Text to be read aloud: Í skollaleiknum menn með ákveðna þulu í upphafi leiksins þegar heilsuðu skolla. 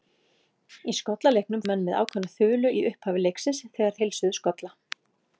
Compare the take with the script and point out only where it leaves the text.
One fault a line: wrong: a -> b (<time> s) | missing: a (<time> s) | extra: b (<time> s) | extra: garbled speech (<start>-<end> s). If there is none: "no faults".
no faults